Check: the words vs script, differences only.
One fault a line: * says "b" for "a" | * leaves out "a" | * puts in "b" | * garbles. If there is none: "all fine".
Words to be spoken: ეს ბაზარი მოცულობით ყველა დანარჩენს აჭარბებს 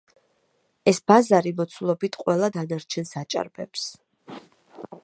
all fine